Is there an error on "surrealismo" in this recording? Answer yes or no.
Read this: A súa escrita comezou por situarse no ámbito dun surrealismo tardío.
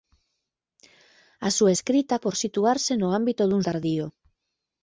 yes